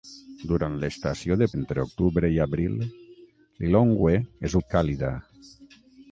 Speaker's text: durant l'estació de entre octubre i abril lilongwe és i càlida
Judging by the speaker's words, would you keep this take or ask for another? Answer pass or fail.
pass